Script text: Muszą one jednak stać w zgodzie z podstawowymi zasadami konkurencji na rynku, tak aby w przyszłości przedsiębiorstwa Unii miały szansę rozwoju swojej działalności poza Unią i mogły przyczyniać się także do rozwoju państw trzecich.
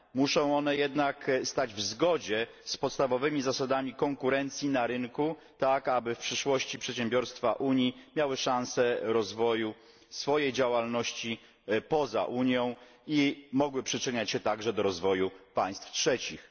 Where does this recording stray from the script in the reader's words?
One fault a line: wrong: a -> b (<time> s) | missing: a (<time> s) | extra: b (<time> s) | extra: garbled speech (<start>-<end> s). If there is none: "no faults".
no faults